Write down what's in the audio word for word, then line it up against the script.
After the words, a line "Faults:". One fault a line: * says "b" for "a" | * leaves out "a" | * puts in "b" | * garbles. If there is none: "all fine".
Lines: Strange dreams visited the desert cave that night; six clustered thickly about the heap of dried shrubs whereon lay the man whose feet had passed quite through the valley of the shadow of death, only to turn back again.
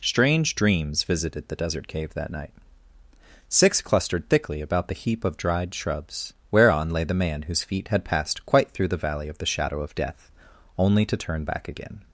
Strange dreams visited the desert cave that night; six clustered thickly about the heap of dried shrubs whereon lay the man whose feet had passed quite through the valley of the shadow of death, only to turn back again.
Faults:
all fine